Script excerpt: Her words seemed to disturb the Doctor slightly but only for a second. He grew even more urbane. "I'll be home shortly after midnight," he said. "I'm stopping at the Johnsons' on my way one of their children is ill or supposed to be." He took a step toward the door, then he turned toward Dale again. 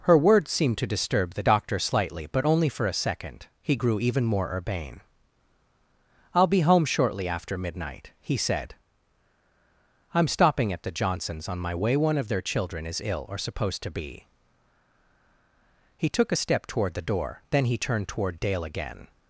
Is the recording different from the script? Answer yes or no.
no